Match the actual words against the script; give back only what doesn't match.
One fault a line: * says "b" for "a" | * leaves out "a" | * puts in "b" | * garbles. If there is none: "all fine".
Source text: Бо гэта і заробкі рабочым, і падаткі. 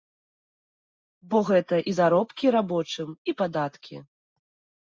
all fine